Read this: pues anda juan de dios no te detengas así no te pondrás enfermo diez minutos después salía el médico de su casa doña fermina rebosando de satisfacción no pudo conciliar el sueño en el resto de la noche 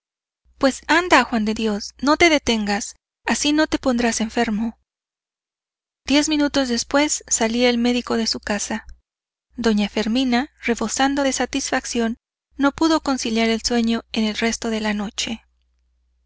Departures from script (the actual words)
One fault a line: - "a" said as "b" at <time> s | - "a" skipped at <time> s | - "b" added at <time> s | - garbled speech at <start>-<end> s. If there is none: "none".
none